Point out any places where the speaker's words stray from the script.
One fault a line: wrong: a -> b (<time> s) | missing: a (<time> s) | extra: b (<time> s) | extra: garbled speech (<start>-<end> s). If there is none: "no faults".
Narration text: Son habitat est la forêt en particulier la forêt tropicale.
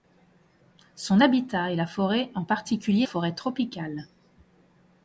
missing: la (3.1 s)